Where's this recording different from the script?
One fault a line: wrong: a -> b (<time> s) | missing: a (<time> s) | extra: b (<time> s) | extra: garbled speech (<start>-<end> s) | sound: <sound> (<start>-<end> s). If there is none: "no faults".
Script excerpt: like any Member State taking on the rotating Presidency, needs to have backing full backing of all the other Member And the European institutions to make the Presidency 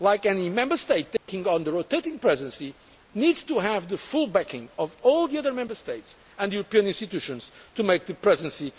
sound: dropout (1.2-1.3 s)
wrong: backing -> the (3.9 s)
extra: States (5.8 s)